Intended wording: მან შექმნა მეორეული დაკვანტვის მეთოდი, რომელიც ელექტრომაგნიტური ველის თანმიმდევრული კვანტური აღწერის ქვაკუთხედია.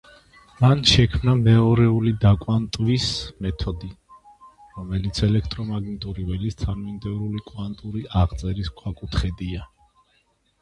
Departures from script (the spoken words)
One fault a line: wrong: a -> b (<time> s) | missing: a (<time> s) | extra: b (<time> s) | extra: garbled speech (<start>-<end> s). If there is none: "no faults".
no faults